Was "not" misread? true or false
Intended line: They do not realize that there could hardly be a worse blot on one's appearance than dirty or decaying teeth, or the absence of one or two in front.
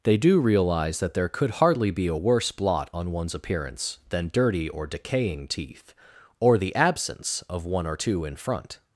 true